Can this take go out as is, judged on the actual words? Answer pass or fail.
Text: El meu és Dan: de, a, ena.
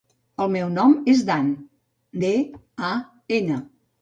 fail